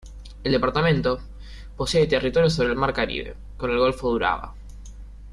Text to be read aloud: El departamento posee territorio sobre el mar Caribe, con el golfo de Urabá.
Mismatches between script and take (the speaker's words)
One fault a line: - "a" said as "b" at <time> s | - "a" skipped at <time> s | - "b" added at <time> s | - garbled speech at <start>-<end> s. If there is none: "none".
none